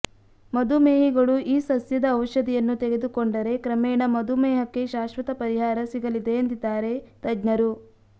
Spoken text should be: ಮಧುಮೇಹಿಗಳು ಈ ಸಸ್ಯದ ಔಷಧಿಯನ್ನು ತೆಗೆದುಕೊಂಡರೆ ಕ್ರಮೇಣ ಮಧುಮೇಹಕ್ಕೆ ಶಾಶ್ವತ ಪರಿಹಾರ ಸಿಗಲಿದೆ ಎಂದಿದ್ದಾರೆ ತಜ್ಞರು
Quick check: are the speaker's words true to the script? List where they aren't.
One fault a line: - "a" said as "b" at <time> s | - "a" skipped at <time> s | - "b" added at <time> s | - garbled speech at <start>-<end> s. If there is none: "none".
none